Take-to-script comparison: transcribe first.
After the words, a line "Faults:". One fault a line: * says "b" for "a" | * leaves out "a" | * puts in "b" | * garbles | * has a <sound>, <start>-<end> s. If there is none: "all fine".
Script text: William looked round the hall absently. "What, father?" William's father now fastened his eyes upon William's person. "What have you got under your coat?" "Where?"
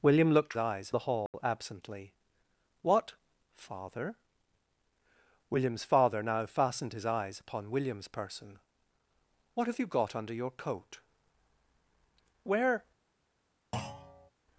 William looked eyes the hall absently. "What, father?" William's father now fastened his eyes upon William's person. "What have you got under your coat?" "Where?"
Faults:
* says "eyes" for "round"
* has a dropout, 1.3-1.3 s
* has a thud, 13.7-14.3 s